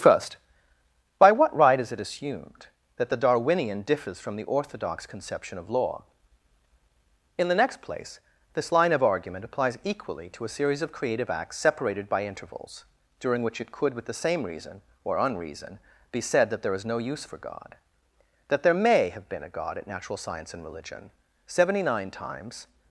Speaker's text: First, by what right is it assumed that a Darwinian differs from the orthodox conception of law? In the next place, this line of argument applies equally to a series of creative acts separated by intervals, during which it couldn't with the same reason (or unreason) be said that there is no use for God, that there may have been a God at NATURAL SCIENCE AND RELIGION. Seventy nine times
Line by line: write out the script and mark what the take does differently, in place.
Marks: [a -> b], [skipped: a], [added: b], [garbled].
First, by what right is it assumed that [a -> the] Darwinian differs from the orthodox conception of law? In the next place, this line of argument applies equally to a series of creative acts separated by intervals, during which it [couldn't -> could] with the same reason (or unreason) be said that there is no use for God, that there may have been a God at NATURAL SCIENCE AND RELIGION. Seventy nine times